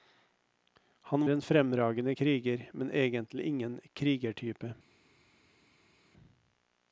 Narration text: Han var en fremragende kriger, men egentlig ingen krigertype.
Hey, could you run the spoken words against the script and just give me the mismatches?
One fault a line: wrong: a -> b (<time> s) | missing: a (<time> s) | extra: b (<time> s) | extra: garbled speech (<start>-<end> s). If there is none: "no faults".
missing: var (1.3 s)